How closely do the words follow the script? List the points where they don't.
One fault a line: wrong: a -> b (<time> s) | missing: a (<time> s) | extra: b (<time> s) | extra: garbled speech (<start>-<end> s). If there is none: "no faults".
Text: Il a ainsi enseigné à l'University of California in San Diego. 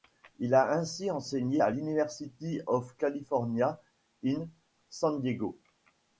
no faults